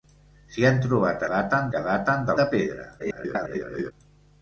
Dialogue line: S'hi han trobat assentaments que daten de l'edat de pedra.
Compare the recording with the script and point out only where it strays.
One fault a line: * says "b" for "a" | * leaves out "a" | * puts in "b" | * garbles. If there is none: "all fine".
* says "daten" for "assentaments"
* leaves out "l'edat"
* garbles